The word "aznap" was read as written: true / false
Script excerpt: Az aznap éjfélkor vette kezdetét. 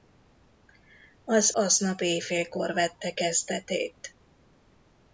true